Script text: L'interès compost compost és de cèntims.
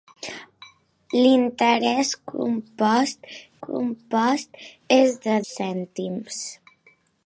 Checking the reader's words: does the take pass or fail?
pass